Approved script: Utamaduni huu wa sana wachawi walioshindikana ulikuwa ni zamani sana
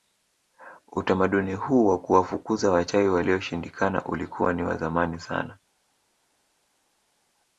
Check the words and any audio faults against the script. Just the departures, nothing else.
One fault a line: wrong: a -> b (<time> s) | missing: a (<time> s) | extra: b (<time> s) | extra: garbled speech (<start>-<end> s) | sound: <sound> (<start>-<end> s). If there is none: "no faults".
wrong: sana -> kuwafukuza (2.0 s)
extra: wa (4.6 s)